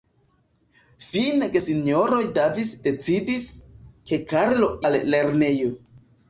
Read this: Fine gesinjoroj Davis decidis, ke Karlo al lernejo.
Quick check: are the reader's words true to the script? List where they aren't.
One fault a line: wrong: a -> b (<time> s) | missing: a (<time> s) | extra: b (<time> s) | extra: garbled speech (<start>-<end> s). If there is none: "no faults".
no faults